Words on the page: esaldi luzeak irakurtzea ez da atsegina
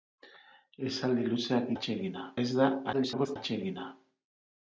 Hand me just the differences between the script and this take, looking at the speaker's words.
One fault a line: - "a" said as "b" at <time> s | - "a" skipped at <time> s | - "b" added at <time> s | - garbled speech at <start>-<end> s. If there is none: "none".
- "irakurtzea" said as "atsegina" at 1.8 s
- garbled speech at 2.9-3.4 s